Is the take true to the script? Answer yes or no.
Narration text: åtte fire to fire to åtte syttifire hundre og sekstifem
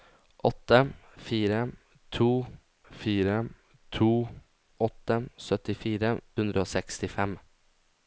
yes